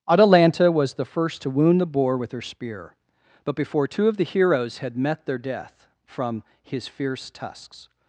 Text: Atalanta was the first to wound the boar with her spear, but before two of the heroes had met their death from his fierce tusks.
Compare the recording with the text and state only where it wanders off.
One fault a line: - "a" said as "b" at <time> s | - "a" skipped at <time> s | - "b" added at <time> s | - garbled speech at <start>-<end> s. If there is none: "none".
none